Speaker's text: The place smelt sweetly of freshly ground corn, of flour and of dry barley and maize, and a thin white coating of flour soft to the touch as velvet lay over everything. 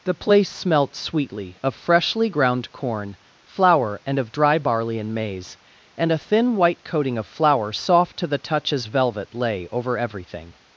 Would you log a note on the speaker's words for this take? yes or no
yes